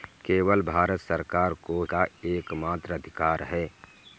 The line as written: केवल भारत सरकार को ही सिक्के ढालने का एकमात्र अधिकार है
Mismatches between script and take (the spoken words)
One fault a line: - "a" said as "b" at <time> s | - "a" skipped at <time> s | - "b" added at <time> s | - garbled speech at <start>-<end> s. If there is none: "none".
- "ही सिक्के ढालने" skipped at 1.8 s